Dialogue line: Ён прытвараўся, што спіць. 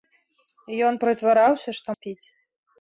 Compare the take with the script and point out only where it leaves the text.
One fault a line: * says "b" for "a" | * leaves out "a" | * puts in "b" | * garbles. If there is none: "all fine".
all fine